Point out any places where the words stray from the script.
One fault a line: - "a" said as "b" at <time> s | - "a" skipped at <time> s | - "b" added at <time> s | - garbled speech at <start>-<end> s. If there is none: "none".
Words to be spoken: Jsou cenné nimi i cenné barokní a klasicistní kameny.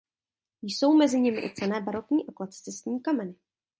- "cenné" said as "mezi" at 1.0 s